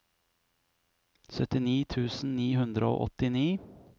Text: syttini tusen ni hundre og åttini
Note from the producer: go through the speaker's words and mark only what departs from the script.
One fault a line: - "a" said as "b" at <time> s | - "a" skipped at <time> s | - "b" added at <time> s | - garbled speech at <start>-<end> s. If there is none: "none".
none